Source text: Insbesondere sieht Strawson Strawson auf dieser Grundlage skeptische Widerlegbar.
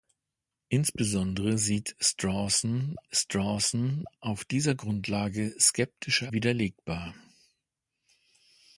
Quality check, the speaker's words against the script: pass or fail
pass